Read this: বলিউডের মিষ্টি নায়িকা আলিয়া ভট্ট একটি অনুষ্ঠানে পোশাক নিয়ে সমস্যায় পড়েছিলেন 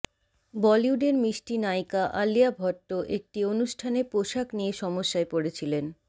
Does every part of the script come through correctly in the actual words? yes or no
yes